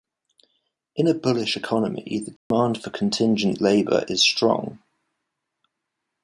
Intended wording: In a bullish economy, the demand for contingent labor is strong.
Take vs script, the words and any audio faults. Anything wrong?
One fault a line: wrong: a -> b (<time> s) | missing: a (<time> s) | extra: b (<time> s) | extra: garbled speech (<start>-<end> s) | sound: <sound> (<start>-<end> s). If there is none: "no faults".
sound: dropout (2.4-2.5 s)